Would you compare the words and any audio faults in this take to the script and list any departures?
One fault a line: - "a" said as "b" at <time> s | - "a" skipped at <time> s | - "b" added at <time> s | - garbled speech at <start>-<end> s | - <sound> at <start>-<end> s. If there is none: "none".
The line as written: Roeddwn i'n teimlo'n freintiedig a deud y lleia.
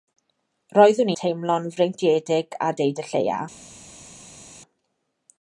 - "i'n" skipped at 1.1 s